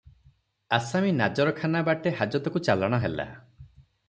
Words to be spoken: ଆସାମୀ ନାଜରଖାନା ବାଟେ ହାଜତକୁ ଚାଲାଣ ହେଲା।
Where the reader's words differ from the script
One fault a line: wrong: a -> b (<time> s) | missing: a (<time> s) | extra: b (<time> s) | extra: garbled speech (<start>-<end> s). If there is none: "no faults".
no faults